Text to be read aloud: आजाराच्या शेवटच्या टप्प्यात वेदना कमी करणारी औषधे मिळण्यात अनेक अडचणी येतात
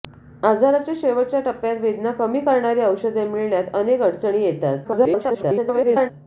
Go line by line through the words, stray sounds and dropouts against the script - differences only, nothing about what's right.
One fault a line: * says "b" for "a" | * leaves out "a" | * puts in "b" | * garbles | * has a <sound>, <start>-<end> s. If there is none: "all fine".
* garbles